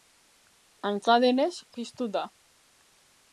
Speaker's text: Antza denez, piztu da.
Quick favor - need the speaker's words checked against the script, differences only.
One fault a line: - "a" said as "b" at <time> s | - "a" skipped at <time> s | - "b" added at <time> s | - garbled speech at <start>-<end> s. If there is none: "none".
none